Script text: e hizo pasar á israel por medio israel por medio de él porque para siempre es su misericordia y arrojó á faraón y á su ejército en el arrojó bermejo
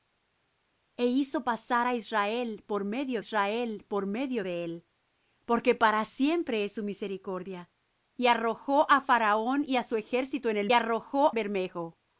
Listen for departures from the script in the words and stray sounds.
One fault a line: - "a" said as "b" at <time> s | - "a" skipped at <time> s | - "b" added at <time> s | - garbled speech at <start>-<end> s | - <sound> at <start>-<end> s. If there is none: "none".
none